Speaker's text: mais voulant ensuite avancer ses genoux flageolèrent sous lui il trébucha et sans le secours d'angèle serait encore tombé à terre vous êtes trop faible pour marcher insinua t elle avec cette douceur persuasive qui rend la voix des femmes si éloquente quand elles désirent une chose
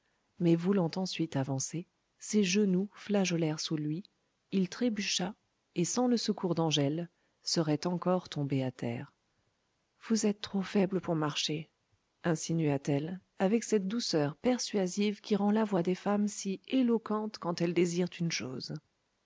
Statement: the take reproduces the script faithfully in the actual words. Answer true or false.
true